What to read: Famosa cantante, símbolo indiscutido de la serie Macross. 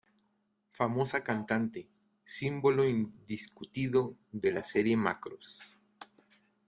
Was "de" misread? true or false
false